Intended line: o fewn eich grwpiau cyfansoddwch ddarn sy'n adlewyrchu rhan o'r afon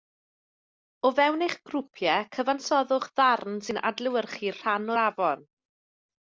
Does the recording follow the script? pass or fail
pass